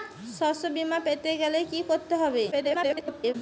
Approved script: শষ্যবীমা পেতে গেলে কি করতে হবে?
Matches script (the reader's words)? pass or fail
fail